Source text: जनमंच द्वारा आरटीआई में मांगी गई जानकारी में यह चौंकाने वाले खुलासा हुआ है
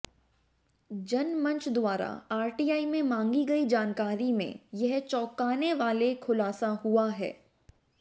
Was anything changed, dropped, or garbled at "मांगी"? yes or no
no